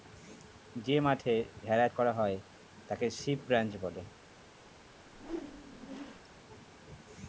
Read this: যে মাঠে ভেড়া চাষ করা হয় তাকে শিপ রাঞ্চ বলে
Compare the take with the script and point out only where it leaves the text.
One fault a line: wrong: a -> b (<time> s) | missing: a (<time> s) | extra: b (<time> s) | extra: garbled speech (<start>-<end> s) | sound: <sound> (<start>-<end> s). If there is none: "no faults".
missing: চাষ (1.9 s)
sound: whoosh (5.0-6.4 s)